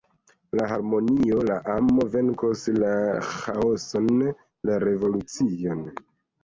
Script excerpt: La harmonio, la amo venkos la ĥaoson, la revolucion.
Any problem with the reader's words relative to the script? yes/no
no